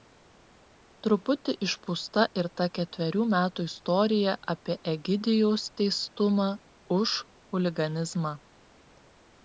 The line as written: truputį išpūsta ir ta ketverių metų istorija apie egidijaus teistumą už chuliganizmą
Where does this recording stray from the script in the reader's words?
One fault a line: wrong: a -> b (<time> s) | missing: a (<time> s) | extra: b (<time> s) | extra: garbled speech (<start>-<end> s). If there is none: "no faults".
no faults